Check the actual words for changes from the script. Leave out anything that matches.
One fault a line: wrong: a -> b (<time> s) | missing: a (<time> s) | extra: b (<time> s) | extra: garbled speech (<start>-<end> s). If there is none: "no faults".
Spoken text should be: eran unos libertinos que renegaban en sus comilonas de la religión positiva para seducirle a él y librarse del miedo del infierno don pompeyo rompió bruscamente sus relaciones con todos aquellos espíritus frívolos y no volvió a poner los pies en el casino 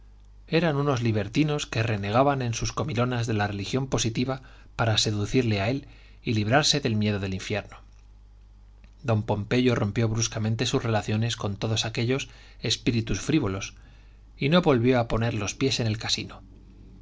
no faults